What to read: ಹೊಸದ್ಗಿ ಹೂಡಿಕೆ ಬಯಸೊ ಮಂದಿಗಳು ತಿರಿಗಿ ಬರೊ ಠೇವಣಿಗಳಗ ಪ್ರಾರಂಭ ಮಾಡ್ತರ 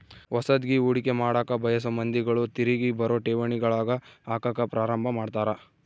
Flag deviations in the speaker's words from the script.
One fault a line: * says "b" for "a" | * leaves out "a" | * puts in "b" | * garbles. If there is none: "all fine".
* puts in "ಮಾಡಕ"
* puts in "ಹಾಕಕ"